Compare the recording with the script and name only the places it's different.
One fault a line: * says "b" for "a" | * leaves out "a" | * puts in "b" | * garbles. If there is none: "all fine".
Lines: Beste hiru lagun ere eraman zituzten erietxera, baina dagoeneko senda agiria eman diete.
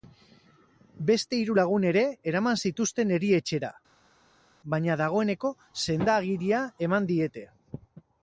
all fine